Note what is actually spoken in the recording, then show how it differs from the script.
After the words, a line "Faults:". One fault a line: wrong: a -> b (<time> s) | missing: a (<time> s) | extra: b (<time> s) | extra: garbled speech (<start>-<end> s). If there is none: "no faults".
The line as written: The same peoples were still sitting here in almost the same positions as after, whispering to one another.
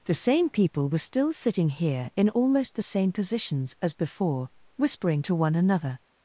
The same people were still sitting here in almost the same positions as before, whispering to one another.
Faults:
wrong: peoples -> people (0.5 s)
wrong: after -> before (3.9 s)